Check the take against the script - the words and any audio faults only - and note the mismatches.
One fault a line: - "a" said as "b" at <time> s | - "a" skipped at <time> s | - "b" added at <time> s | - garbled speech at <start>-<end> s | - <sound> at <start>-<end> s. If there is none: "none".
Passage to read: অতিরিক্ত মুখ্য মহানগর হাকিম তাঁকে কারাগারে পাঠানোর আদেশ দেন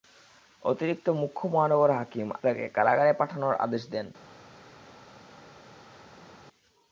none